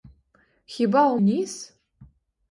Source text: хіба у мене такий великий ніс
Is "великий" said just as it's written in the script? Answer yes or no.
no